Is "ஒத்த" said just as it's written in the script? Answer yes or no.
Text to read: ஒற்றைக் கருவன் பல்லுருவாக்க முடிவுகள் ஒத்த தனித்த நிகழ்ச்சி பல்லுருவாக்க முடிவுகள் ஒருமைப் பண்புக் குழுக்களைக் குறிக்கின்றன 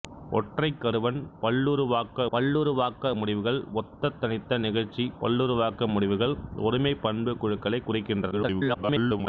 yes